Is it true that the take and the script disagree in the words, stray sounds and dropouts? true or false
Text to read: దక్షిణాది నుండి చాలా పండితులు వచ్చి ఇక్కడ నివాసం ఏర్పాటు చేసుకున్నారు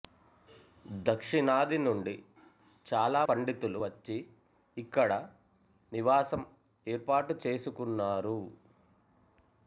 false